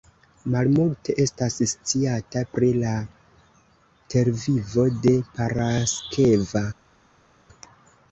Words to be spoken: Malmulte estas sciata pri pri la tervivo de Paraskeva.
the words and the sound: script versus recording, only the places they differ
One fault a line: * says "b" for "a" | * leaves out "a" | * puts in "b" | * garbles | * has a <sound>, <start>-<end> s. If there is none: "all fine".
* leaves out "pri"